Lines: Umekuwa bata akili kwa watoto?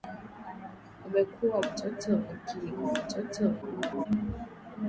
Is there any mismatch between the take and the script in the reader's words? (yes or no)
yes